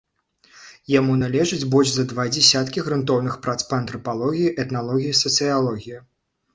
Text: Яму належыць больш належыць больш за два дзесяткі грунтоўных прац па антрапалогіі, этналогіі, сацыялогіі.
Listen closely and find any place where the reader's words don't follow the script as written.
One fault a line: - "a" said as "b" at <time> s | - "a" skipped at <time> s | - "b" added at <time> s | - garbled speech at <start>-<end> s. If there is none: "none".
- "належыць больш" skipped at 1.9 s